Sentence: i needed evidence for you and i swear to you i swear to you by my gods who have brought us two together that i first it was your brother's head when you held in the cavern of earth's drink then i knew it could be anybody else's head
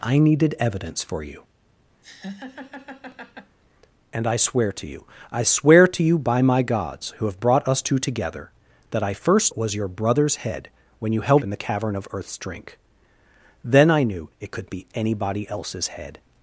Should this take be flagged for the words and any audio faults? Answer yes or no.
yes